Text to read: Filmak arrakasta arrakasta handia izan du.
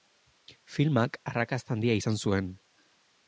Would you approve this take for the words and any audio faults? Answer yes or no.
no